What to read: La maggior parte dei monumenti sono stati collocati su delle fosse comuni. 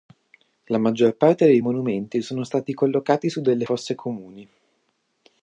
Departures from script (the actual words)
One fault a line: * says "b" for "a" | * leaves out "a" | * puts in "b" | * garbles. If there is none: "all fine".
all fine